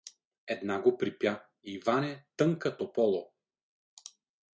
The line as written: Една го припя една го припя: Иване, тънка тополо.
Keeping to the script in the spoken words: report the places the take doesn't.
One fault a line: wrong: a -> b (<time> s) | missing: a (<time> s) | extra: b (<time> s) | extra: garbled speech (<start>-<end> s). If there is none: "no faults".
missing: една го припя (1.4 s)